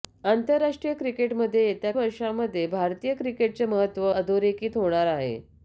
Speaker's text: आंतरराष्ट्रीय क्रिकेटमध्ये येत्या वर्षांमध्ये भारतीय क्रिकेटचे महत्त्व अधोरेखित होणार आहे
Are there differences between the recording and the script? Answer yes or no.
no